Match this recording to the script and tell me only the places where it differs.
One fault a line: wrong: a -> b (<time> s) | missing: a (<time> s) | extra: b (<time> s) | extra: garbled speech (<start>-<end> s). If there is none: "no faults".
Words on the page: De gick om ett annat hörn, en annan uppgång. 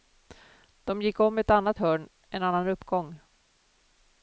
no faults